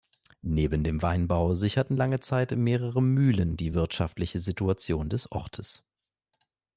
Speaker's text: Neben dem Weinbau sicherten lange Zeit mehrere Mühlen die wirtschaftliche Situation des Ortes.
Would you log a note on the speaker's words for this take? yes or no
no